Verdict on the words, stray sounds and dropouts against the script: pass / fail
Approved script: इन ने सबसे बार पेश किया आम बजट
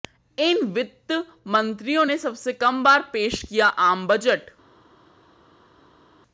fail